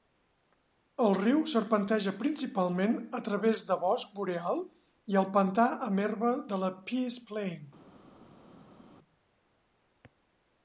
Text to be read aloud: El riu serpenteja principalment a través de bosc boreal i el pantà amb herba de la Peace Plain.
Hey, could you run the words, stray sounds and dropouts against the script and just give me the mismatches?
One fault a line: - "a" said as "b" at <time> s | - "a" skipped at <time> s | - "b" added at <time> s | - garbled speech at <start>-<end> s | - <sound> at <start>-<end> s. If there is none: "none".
none